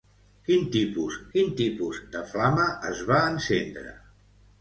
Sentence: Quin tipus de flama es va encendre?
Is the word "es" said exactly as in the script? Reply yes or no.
yes